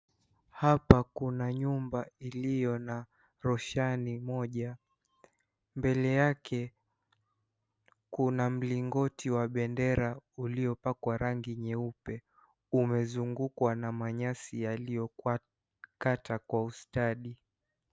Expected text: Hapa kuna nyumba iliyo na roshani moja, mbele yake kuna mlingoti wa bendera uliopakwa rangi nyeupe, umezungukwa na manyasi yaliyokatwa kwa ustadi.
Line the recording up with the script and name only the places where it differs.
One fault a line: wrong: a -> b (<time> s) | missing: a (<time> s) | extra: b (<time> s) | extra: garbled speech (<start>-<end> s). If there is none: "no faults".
no faults